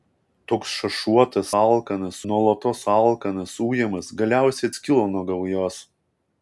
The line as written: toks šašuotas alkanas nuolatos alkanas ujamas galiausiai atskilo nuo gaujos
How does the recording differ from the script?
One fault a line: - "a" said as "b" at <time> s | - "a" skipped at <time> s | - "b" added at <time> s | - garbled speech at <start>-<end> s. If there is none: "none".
none